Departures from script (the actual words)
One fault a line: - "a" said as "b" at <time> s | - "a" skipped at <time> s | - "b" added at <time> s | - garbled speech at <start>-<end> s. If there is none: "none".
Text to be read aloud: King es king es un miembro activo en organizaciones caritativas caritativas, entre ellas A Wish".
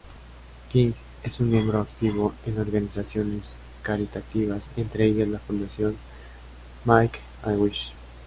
- "king es" skipped at 1.4 s
- "caritativas" skipped at 4.7 s
- "la fundación Make" added at 5.3 s